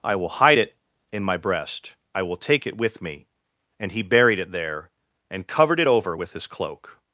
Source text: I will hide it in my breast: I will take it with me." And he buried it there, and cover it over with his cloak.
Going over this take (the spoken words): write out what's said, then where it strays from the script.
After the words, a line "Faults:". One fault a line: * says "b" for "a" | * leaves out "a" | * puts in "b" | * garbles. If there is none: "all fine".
I will hide it in my breast: I will take it with me." And he buried it there, and covered it over with his cloak.
Faults:
* says "covered" for "cover"